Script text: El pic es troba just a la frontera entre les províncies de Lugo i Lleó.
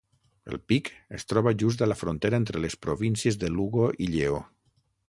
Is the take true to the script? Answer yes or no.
yes